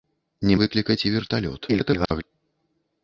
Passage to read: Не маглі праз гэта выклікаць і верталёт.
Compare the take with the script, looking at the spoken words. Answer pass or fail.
fail